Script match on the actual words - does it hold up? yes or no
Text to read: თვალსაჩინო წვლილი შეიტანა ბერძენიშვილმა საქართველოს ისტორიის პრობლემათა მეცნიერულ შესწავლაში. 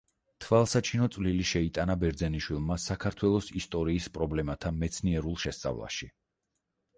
yes